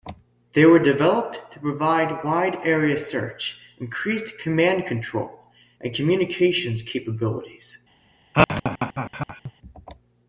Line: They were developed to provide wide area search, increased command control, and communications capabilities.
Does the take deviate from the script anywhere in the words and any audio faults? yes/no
yes